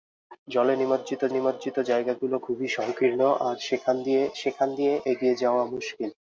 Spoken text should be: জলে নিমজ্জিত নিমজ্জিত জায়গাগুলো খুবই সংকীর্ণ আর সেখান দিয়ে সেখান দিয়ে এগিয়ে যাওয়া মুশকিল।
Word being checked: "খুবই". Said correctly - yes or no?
yes